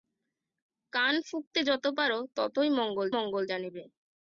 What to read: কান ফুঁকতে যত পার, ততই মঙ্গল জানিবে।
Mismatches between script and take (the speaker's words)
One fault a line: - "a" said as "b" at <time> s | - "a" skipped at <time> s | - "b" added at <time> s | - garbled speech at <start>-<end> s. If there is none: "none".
- "মঙ্গল" added at 3.2 s